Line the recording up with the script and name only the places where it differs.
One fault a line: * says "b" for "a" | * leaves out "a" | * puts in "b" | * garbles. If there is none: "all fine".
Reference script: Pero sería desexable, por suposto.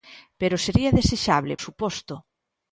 * leaves out "por"